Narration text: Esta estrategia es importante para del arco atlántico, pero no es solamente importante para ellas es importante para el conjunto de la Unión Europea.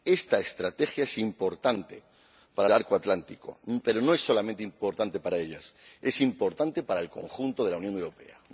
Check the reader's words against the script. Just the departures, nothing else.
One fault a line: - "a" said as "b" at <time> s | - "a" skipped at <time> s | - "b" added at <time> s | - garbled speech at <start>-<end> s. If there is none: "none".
none